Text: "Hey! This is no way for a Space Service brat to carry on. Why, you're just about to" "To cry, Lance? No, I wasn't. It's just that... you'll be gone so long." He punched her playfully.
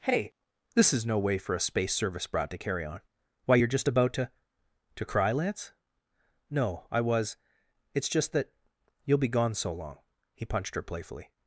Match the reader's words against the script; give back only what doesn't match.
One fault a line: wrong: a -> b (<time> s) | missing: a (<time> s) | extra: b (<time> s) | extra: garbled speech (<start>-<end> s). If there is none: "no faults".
wrong: wasn't -> was (7.0 s)